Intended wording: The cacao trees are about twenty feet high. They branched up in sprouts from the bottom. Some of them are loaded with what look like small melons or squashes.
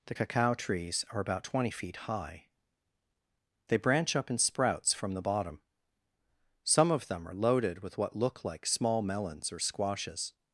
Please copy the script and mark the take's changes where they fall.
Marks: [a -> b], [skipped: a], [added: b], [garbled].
The cacao trees are about twenty feet high. They [branched -> branch] up in sprouts from the bottom. Some of them are loaded with what look like small melons or squashes.